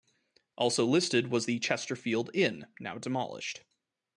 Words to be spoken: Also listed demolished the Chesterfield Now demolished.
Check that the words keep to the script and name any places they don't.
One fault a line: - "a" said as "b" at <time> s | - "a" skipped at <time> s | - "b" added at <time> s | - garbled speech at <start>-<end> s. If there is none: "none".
- "demolished" said as "was" at 1.3 s
- "Inn" added at 2.3 s